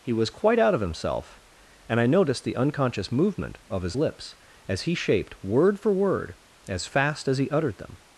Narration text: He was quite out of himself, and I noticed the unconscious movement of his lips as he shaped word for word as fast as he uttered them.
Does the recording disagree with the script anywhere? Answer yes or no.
no